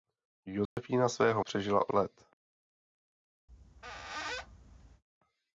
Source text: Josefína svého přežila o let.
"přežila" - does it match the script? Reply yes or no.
yes